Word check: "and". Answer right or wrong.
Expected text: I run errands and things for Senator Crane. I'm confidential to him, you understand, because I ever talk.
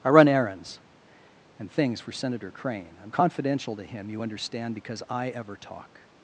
right